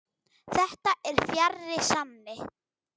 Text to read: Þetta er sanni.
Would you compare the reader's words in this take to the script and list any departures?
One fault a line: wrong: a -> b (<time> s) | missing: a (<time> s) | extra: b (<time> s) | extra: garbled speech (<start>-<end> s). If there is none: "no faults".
extra: fjarri (1.3 s)